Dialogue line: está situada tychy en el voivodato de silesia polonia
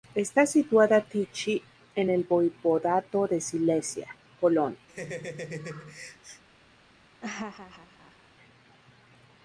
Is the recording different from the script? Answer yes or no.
no